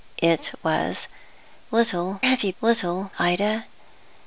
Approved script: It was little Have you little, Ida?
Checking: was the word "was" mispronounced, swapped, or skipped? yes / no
no